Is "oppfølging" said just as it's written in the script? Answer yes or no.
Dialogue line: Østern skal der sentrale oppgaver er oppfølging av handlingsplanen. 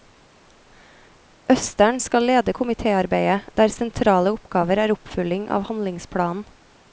yes